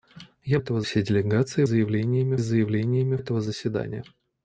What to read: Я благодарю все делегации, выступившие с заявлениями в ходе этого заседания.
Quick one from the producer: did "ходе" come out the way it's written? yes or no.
no